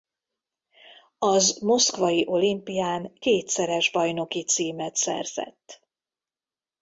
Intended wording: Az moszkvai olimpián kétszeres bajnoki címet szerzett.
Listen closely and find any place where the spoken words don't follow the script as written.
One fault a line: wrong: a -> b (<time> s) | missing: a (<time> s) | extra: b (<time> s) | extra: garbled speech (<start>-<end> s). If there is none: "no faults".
no faults